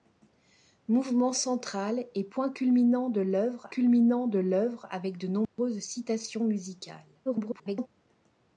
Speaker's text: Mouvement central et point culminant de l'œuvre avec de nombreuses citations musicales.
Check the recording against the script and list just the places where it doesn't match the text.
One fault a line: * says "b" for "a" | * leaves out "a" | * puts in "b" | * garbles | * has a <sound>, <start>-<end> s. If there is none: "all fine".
* puts in "culminant de l'œuvre"
* has a dropout, 5.4-5.6 s
* garbles